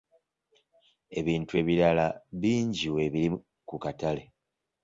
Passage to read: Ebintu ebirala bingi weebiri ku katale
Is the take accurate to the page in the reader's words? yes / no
yes